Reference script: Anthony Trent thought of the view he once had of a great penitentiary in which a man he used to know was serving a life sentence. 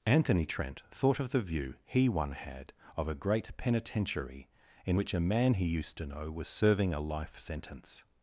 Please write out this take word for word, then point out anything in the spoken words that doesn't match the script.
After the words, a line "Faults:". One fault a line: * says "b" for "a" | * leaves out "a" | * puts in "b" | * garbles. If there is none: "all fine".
Anthony Trent thought of the view he one had of a great penitentiary in which a man he used to know was serving a life sentence.
Faults:
* says "one" for "once"